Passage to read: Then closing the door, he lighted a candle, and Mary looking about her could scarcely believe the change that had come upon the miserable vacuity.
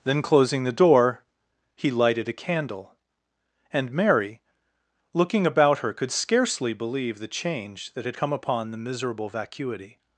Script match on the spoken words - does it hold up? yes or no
yes